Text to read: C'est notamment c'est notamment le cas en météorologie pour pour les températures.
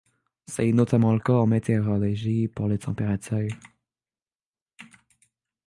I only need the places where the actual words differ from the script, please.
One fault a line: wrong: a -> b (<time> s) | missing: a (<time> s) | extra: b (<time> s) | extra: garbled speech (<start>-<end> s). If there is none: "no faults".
missing: c'est notamment (1.1 s)
missing: pour (2.7 s)